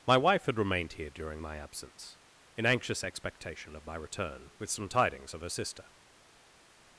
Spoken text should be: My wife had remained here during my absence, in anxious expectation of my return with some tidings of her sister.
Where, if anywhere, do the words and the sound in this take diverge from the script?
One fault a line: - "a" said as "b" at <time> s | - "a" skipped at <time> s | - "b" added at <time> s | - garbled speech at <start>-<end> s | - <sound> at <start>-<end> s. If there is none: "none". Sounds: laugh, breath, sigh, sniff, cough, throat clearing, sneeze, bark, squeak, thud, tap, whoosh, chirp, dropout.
none